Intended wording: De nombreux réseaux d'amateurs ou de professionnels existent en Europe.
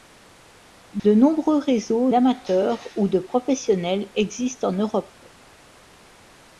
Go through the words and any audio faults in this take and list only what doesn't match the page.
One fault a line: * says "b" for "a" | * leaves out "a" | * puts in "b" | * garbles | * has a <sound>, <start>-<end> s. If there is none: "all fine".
* has a dropout, 1.0-1.0 s